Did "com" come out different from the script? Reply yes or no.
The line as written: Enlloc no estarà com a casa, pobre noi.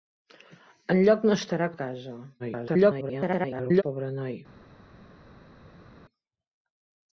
yes